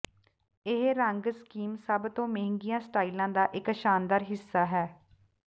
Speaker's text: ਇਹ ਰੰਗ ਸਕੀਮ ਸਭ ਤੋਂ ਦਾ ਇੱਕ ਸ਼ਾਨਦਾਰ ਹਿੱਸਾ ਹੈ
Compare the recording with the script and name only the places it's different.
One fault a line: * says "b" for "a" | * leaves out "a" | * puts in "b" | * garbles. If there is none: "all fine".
* puts in "ਮਹਿੰਗੀਆਂ ਸਟਾਈਲਾਂ"